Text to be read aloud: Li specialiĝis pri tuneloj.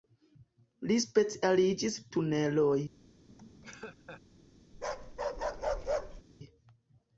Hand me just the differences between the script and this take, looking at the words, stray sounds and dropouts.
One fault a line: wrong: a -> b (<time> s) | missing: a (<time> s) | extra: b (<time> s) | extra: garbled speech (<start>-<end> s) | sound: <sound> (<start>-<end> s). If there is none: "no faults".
missing: pri (2.0 s)
sound: laugh (3.3-4.2 s)
sound: bark (4.7-6.2 s)